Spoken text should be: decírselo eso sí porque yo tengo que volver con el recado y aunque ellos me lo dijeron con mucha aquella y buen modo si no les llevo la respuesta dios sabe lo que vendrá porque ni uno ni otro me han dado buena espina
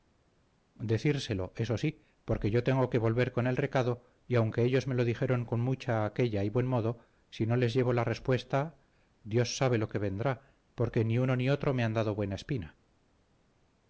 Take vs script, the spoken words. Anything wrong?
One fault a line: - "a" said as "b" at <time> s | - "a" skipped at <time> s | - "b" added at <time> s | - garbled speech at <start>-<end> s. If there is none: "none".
none